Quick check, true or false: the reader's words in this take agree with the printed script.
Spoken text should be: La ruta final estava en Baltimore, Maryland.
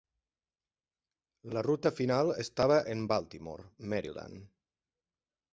true